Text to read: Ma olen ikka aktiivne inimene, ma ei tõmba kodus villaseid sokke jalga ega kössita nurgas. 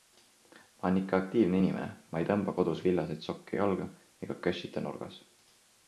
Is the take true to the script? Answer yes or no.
yes